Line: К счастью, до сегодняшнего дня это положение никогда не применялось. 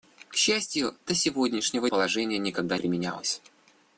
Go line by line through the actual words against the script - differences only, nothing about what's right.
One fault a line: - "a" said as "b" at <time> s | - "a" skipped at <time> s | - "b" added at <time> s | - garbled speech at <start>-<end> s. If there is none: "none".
- "дня это" skipped at 1.9 s
- "не" skipped at 2.8 s